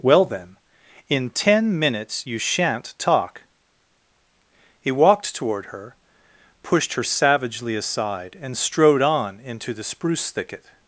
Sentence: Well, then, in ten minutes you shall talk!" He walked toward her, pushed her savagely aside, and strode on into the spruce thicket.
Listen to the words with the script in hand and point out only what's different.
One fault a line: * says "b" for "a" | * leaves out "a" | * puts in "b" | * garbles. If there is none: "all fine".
* says "shan't" for "shall"